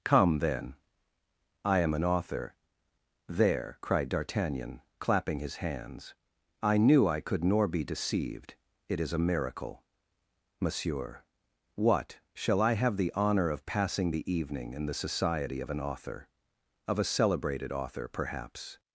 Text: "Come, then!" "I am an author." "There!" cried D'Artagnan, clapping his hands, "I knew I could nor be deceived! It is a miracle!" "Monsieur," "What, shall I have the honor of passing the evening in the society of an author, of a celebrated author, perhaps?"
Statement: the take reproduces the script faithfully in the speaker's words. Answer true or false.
true